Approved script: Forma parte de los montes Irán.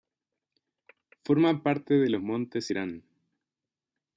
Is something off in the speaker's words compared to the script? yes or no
no